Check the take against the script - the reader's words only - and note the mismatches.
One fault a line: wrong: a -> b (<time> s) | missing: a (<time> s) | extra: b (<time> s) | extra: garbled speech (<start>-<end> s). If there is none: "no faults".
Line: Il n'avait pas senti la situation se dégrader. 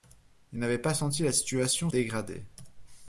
missing: se (1.9 s)